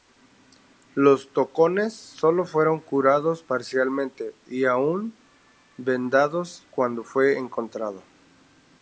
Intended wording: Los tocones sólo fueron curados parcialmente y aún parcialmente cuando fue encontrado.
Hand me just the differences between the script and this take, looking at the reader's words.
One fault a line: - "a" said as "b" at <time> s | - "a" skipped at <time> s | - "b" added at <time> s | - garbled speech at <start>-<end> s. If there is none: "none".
- "parcialmente" said as "vendados" at 5.8 s